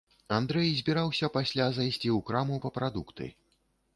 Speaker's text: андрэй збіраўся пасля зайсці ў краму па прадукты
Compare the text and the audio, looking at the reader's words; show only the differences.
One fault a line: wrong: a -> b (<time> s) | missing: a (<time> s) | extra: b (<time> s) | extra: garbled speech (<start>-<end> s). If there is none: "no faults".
no faults